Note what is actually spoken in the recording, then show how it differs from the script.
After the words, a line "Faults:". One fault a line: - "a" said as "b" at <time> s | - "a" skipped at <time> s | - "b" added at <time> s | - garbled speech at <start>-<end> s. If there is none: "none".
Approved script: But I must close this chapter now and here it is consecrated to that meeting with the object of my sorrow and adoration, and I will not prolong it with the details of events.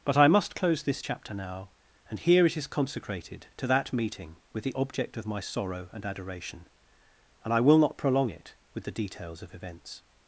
But I must close this chapter now and here it is consecrated to that meeting with the object of my sorrow and adoration, and I will not prolong it with the details of events.
Faults:
none